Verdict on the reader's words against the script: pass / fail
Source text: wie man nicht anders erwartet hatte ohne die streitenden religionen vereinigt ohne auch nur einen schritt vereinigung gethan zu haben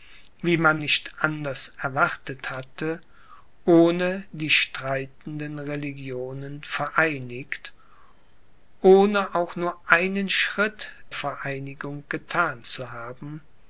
pass